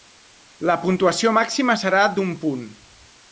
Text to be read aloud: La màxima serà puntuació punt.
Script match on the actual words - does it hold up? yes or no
no